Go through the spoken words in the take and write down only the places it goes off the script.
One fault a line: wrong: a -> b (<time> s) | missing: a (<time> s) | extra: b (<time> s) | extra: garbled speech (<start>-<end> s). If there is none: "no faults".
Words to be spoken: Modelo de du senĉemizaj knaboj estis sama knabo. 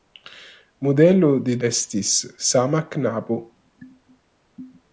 missing: du senĉemizaj knaboj (1.6 s)